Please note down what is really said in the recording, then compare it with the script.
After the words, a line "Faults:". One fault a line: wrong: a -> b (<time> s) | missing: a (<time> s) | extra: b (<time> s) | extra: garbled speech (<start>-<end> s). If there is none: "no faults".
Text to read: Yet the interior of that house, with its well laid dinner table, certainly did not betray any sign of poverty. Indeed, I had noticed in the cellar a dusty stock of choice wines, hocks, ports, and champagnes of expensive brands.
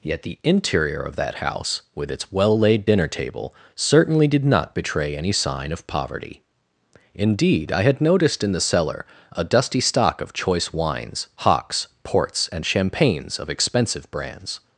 Yet the interior of that house, with its well laid dinner table, certainly did not betray any sign of poverty. Indeed, I had noticed in the cellar a dusty stock of choice wines, hocks, ports, and champagnes of expensive brands.
Faults:
no faults